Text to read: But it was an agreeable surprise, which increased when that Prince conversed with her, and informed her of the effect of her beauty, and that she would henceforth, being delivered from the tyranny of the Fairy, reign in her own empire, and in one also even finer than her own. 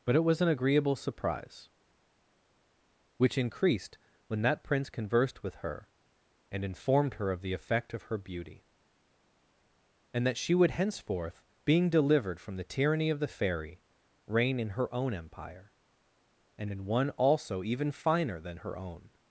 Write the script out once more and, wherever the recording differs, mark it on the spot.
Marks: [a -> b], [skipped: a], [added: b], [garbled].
But it was an agreeable surprise, which increased when that Prince conversed with her, and informed her of the effect of her beauty, and that she would henceforth, being delivered from the tyranny of the Fairy, reign in her own empire, and in one also even finer than her own.